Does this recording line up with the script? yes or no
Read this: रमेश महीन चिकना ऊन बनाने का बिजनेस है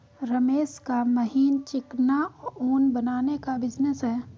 no